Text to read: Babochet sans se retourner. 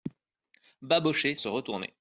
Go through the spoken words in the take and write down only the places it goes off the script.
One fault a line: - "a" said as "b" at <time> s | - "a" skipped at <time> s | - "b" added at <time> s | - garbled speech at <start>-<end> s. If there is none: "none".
- "sans" skipped at 1.4 s